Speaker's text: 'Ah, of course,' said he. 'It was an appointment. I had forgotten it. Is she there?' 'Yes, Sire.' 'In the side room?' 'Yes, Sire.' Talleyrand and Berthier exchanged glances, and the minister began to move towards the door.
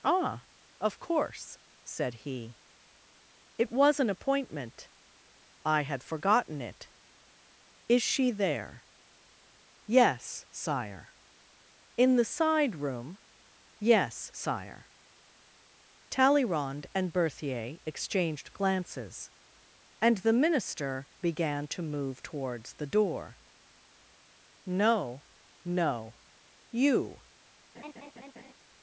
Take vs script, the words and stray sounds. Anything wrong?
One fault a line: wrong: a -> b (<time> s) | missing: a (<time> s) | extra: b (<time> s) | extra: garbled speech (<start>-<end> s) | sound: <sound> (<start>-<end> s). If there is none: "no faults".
extra: No no you (24.7 s)
sound: laugh (27.7-28.5 s)